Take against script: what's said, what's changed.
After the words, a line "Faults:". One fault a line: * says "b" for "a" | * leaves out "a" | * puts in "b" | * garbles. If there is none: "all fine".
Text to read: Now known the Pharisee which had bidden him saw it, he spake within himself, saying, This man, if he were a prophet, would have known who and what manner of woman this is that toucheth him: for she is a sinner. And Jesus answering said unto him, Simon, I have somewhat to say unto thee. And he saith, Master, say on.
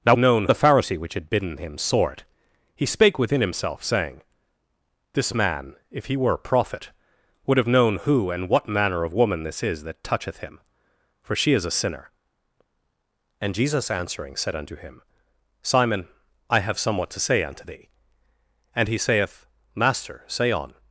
Now known the Pharisee which had bidden him saw it, he spake within himself, saying, This man, if he were a prophet, would have known who and what manner of woman this is that toucheth him: for she is a sinner. And Jesus answering said unto him, Simon, I have somewhat to say unto thee. And he saith, Master, say on.
Faults:
all fine